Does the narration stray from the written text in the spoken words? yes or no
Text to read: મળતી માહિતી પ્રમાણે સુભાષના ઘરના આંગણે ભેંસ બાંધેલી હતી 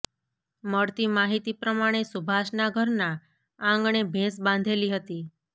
no